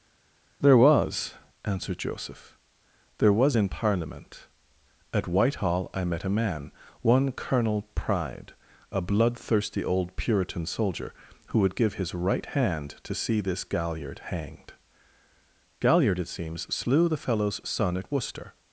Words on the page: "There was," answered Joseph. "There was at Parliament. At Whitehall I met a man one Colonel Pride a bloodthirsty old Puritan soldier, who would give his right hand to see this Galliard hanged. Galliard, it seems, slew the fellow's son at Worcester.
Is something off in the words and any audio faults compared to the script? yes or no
yes